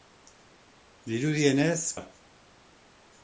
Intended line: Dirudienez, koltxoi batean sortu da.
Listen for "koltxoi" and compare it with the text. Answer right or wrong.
wrong